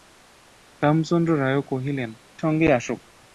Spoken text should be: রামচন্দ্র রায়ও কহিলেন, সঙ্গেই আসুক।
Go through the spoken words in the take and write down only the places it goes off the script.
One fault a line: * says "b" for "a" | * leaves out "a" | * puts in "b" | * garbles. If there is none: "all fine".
all fine